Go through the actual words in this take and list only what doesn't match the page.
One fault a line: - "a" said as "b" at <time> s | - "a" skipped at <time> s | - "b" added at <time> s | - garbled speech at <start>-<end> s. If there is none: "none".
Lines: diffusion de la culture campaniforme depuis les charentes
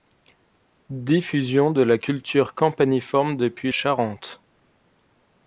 - "les" skipped at 3.7 s